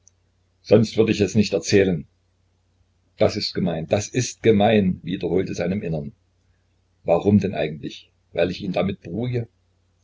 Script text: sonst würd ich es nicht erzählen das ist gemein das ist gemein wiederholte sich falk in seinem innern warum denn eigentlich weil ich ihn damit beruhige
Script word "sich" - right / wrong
wrong